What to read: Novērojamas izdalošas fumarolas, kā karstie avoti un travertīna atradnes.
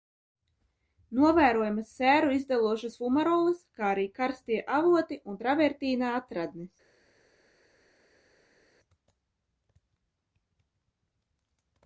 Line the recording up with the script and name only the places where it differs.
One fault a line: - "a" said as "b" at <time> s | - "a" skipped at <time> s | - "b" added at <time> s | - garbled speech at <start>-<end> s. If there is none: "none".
- "sēru" added at 2.0 s
- "arī" added at 4.0 s